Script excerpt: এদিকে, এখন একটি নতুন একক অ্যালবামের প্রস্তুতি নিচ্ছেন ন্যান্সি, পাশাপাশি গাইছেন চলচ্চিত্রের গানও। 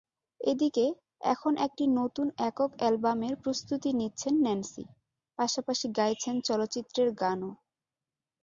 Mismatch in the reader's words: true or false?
false